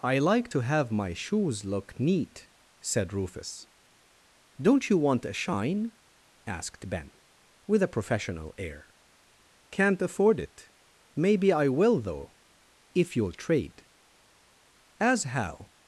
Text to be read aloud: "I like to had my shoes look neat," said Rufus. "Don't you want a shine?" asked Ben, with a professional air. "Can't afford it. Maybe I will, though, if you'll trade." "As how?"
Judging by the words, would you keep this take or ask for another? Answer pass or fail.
fail